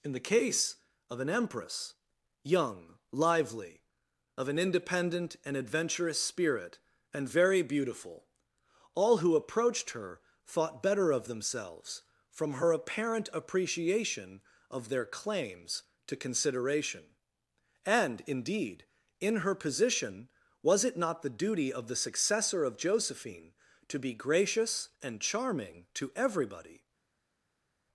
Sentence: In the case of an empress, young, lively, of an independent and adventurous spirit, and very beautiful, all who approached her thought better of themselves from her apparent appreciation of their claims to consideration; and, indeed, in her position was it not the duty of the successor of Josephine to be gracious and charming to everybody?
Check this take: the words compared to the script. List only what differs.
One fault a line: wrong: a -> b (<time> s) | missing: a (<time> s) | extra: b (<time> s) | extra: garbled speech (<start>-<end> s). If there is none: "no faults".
no faults